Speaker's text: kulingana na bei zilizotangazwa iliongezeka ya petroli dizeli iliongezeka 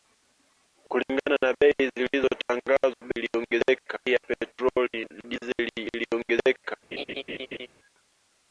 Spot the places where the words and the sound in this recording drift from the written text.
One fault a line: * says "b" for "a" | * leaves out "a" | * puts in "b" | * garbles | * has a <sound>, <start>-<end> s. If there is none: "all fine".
* has a laugh, 6.9-7.7 s